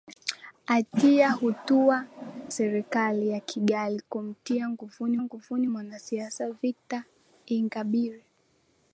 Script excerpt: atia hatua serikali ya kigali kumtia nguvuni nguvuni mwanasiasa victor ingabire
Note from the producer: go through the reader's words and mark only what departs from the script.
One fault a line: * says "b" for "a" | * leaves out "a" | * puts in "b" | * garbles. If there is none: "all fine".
all fine